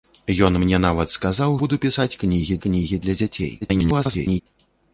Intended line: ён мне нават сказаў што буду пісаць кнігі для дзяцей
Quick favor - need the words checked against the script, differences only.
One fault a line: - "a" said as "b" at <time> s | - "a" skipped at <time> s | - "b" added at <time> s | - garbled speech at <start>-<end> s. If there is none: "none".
- "што" skipped at 1.5 s
- "кнігі" added at 2.7 s
- garbled speech at 3.6-4.4 s